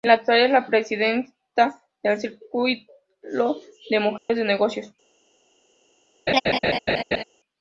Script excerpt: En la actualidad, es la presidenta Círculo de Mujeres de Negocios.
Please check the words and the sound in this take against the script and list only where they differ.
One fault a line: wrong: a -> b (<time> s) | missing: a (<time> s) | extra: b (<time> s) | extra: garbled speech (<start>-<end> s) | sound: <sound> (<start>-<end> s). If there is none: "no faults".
extra: del (2.0 s)
sound: dropout (4.2-4.3 s)
sound: laugh (6.3-7.2 s)